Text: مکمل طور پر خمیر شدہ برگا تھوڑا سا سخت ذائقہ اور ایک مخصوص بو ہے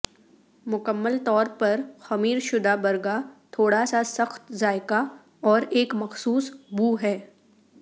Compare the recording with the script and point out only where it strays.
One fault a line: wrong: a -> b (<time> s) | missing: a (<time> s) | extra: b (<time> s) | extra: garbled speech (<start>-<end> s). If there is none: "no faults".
no faults